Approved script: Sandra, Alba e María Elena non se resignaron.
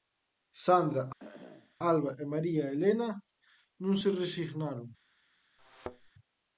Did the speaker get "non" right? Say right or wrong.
right